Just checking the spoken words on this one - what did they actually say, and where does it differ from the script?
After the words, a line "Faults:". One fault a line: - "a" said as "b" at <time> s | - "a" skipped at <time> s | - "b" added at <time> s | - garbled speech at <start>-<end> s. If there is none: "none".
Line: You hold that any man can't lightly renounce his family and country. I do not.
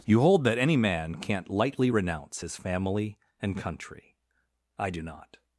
You hold that any man can't lightly renounce his family and country. I do not.
Faults:
none